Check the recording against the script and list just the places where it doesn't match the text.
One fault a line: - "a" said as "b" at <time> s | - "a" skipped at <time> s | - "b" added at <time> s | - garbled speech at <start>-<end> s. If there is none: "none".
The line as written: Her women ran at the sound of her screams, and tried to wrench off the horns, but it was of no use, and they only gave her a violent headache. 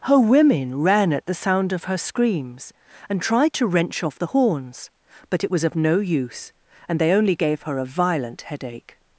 none